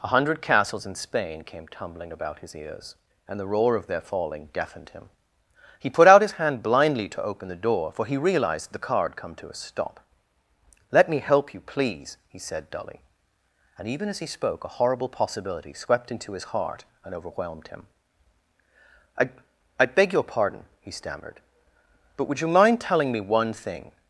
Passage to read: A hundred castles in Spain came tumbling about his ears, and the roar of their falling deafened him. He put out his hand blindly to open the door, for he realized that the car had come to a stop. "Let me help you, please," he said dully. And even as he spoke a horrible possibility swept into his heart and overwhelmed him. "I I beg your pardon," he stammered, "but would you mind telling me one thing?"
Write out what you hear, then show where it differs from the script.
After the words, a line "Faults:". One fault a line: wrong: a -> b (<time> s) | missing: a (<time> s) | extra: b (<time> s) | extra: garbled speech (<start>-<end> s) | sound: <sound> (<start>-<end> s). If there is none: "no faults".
A hundred castles in Spain came tumbling about his ears, and the roar of their falling deafened him. He put out his hand blindly to open the door, for he realized the car had come to a stop. "Let me help you, please," he said dully. And even as he spoke a horrible possibility swept into his heart and overwhelmed him. "I I beg your pardon," he stammered, "but would you mind telling me one thing?"
Faults:
missing: that (8.7 s)